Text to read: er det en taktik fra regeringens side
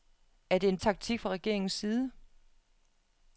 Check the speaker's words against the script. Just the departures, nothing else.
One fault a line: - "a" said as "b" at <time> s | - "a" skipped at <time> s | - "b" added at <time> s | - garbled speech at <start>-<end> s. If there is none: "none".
none